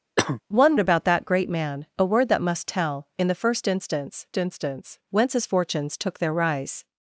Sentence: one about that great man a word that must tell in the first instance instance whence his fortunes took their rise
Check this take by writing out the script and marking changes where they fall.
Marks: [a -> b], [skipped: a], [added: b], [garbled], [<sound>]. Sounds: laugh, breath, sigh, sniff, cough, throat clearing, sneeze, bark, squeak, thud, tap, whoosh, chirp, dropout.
[cough] one about that great man a word that must tell in the first instance instance whence his fortunes took their rise